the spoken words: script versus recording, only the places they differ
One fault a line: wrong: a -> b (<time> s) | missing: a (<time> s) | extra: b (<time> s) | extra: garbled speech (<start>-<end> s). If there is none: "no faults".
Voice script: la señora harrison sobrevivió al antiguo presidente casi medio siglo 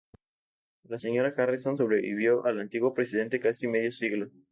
no faults